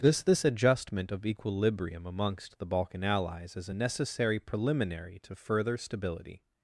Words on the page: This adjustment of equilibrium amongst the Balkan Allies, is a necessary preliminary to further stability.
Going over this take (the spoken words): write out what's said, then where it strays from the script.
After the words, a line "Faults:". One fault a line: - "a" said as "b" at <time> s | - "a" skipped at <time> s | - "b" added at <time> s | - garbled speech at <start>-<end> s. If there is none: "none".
This this adjustment of equilibrium amongst the Balkan Allies, is a necessary preliminary to further stability.
Faults:
- "this" added at 0.2 s